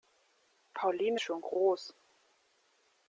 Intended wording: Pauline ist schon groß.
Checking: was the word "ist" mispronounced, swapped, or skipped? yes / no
yes